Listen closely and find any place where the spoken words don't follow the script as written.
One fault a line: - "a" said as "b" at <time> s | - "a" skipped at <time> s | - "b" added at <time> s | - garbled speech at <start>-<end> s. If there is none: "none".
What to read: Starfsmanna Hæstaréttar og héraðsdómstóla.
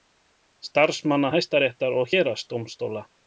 none